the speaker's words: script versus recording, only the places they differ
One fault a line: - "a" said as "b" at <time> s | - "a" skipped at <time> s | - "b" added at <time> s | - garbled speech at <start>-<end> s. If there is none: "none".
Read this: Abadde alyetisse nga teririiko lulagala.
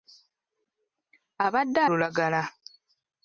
- "alyetisse nga teririiko" skipped at 1.8 s